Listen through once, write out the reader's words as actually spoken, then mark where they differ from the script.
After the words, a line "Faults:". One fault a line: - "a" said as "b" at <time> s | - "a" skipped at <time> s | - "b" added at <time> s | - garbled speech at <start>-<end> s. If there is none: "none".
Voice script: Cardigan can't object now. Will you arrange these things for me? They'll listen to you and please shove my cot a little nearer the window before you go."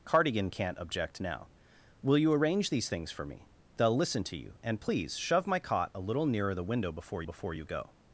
Cardigan can't object now. Will you arrange these things for me? They'll listen to you and please shove my cot a little nearer the window before before you go."
Faults:
- "before" added at 7.2 s